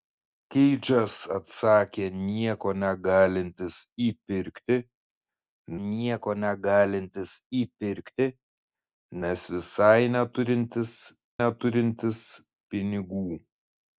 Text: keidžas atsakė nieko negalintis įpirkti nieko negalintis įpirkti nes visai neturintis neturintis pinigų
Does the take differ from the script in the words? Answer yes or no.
no